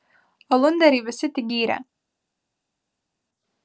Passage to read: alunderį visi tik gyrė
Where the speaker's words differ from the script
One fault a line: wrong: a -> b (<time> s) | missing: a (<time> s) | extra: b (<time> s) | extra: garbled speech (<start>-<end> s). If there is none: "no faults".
no faults